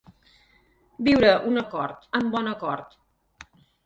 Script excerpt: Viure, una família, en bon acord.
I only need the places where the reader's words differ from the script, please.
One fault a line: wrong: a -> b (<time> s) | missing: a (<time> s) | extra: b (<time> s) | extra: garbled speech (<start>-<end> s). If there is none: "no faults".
wrong: família -> acord (1.6 s)